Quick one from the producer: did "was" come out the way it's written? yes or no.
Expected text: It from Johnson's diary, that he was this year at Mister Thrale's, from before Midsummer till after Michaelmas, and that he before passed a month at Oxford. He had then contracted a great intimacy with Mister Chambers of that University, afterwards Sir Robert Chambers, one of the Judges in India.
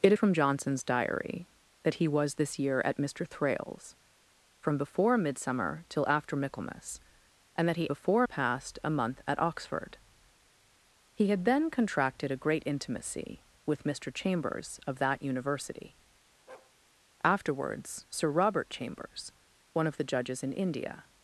yes